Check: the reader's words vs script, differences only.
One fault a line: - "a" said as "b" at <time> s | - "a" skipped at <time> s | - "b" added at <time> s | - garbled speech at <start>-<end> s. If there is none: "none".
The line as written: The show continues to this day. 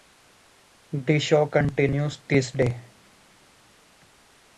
- "to" skipped at 2.2 s